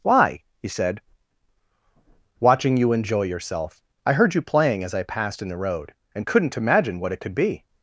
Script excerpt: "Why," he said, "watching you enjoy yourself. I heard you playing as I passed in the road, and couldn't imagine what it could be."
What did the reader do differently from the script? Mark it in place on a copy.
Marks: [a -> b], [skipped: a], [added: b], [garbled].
"Why," he said, "watching you enjoy yourself. I heard you playing as I passed in the road, and couldn't imagine what it could be."